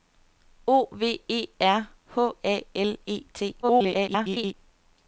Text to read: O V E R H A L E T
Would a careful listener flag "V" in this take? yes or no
no